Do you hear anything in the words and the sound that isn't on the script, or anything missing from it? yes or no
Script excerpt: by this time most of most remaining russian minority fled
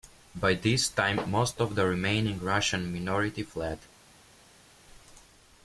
yes